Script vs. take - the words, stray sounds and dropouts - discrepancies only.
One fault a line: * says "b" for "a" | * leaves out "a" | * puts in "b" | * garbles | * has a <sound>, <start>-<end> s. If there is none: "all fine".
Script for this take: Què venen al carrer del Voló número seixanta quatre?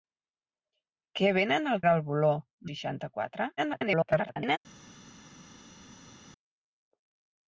* leaves out "carrer"
* leaves out "número"
* garbles